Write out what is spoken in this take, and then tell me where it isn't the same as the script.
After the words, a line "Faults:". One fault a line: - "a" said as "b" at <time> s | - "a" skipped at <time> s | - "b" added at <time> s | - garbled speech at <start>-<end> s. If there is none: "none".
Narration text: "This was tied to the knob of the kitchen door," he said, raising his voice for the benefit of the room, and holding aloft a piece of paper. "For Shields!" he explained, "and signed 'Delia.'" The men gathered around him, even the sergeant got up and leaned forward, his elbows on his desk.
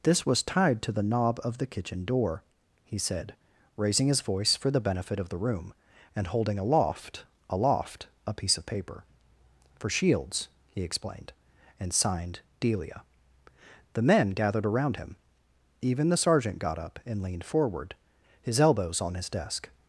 "This was tied to the knob of the kitchen door," he said, raising his voice for the benefit of the room, and holding aloft aloft a piece of paper. "For Shields!" he explained, "and signed 'Delia.'" The men gathered around him, even the sergeant got up and leaned forward, his elbows on his desk.
Faults:
- "aloft" added at 7.5 s